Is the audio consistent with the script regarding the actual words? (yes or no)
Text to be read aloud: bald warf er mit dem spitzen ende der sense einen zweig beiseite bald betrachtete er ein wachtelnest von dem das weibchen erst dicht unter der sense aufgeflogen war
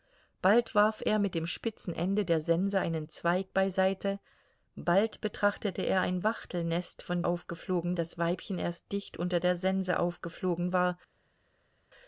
no